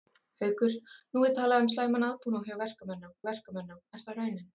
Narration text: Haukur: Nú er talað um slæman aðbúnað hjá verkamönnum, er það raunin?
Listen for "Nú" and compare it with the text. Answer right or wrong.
right